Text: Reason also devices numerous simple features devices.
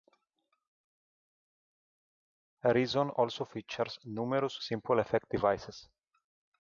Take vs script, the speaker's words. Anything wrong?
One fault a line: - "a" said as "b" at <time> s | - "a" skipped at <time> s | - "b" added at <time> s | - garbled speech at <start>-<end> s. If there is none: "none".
- "devices" said as "features" at 3.4 s
- "features" said as "effect" at 5.0 s